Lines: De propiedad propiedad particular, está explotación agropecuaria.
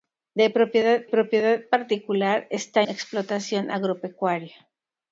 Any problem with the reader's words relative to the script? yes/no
no